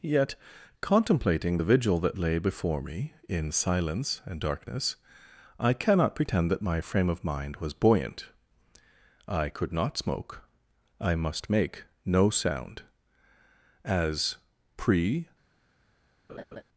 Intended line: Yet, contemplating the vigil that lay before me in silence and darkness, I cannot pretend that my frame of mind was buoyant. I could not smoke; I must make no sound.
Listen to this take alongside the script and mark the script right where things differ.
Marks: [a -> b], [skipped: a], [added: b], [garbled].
Yet, contemplating the vigil that lay before me in silence and darkness, I cannot pretend that my frame of mind was buoyant. I could not smoke; I must make no sound. [added: As pre]